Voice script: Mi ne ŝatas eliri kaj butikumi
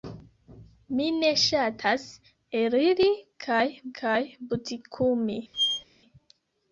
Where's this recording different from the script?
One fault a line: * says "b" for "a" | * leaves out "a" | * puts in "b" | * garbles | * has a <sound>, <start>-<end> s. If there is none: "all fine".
* puts in "kaj"
* has a squeak, 5.5-5.8 s